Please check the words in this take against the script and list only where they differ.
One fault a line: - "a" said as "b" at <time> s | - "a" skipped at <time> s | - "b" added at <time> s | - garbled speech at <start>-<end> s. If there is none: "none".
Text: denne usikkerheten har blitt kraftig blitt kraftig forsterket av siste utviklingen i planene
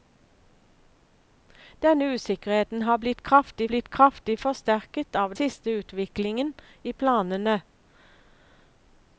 none